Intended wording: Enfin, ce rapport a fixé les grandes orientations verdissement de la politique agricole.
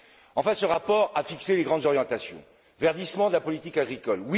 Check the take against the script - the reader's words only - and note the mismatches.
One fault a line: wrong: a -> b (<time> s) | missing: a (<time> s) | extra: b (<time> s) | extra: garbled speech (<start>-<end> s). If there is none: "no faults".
no faults